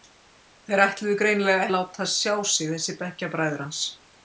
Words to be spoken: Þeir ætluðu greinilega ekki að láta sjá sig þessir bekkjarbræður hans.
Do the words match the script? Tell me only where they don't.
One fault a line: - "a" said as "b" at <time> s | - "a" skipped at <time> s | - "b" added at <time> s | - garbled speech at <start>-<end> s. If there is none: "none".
- "ekki" skipped at 1.7 s